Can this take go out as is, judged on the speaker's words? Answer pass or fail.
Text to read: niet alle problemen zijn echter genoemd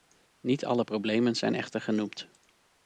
pass